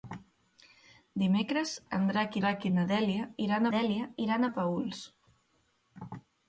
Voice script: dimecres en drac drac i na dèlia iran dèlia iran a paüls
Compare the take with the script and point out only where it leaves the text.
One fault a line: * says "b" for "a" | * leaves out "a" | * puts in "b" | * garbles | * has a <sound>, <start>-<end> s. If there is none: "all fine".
all fine